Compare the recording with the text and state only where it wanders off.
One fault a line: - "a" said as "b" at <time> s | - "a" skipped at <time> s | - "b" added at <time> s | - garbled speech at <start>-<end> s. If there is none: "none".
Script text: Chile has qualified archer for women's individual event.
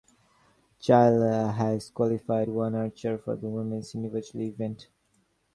- "one" added at 2.5 s
- "the" added at 3.3 s